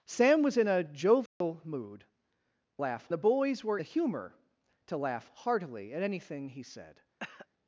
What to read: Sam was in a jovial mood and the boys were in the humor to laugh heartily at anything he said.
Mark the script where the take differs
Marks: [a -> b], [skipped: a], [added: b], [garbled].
Sam was in a jovial mood [and -> laugh] the boys were [skipped: in] the humor to laugh heartily at anything he said.